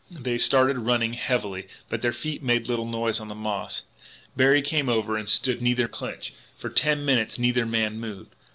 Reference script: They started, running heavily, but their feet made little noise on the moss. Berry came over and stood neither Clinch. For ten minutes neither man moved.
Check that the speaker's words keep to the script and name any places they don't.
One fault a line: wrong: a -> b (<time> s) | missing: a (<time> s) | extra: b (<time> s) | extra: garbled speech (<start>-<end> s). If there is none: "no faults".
no faults